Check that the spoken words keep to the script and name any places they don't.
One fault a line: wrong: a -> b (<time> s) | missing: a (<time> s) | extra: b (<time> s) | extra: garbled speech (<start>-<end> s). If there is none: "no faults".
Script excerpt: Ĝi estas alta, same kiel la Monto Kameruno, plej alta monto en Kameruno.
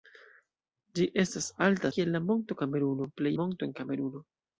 missing: same (1.9 s)
missing: alta (3.3 s)